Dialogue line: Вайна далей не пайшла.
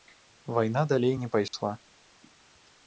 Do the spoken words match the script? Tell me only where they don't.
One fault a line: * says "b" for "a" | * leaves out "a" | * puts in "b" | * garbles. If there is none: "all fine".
all fine